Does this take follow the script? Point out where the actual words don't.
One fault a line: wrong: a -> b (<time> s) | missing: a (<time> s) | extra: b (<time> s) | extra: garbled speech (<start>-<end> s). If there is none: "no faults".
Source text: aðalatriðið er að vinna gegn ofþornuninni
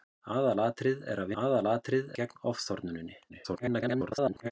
wrong: vinna -> aðalatriðið (1.4 s)
extra: garbled speech (3.3-4.5 s)